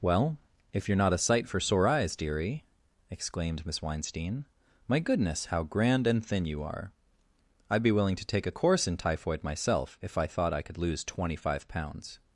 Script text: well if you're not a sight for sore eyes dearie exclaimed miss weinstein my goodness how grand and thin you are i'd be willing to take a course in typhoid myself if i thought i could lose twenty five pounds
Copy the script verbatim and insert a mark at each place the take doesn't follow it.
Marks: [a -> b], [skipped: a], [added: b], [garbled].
well if you're not a sight for sore eyes dearie exclaimed miss weinstein my goodness how grand and thin you are i'd be willing to take a course in typhoid myself if i thought i could lose twenty five pounds